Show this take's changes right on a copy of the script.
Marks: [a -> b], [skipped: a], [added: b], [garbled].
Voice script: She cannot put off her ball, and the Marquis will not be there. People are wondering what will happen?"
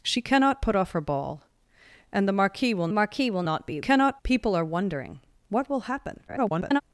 She cannot put off her ball, and the Marquis will [added: Marquis will] not be [there. -> cannot] People are wondering what will happen?" [garbled]